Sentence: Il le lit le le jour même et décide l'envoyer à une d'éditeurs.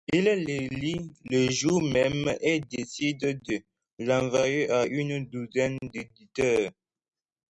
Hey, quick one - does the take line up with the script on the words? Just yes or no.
no